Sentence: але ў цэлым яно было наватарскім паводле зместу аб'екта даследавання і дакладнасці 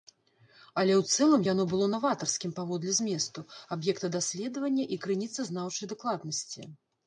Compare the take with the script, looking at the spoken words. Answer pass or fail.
fail